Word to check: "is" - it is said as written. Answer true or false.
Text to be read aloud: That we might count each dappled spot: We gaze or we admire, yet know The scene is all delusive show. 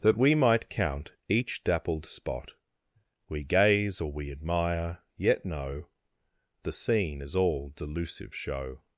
true